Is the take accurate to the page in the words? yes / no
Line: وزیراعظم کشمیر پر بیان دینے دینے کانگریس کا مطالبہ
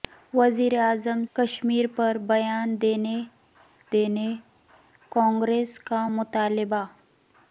yes